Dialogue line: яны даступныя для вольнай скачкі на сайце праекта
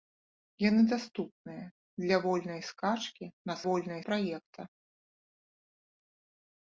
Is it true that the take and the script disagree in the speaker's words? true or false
true